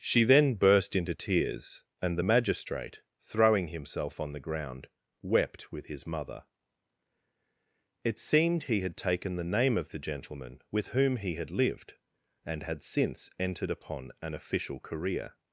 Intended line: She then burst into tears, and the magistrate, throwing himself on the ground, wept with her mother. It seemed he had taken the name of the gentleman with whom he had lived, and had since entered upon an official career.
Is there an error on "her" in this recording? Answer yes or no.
yes